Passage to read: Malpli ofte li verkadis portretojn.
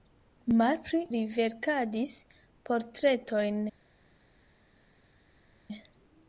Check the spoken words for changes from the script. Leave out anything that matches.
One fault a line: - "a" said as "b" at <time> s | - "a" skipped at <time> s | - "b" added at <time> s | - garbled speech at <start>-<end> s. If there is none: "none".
- "ofte" skipped at 1.0 s